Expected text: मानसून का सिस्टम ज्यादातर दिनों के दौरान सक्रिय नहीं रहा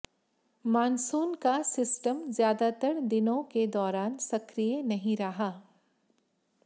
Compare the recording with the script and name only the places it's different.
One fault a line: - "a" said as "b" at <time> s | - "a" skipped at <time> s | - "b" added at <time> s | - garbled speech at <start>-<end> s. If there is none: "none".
none